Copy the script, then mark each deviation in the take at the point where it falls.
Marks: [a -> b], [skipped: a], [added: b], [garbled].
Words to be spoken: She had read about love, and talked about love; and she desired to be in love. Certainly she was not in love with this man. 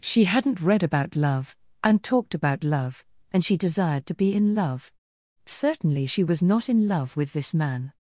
She [had -> hadn't] read about love, and talked about love; and she desired to be in love. Certainly she was not in love with this man.